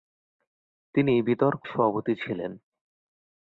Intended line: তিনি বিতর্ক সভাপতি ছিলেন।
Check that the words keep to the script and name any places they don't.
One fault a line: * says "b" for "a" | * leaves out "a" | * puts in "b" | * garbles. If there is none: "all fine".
all fine